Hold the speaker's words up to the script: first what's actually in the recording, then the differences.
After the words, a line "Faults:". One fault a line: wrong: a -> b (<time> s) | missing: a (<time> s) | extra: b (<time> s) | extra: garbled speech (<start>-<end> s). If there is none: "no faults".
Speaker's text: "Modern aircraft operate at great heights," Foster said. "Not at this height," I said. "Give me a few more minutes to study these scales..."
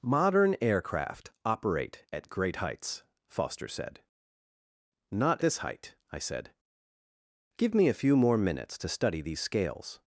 "Modern aircraft operate at great heights," Foster said. "Not this height," I said. "Give me a few more minutes to study these scales..."
Faults:
missing: at (5.4 s)